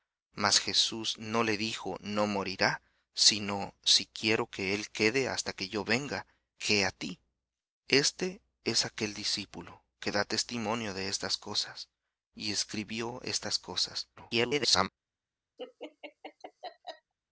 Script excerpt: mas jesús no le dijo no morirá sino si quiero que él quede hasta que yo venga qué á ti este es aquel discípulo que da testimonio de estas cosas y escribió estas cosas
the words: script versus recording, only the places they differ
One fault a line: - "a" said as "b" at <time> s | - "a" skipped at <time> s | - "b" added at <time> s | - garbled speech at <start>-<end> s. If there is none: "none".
- garbled speech at 14.2-14.9 s